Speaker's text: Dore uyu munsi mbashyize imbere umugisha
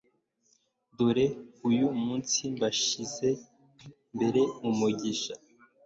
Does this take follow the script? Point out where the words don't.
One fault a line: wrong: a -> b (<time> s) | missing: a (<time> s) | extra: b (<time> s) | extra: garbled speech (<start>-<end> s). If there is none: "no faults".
no faults